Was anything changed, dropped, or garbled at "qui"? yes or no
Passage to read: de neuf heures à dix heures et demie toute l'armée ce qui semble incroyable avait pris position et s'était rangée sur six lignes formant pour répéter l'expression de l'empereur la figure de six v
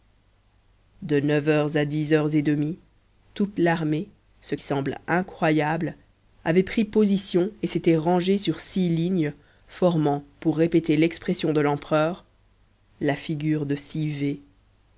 yes